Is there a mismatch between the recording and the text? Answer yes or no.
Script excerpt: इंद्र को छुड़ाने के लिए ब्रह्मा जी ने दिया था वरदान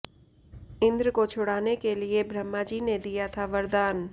no